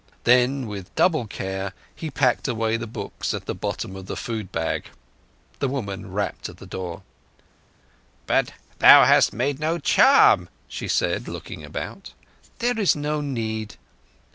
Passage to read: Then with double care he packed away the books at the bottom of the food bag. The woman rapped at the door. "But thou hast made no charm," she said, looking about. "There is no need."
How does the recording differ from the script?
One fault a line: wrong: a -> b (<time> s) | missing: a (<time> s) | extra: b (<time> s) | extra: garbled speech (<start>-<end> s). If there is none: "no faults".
no faults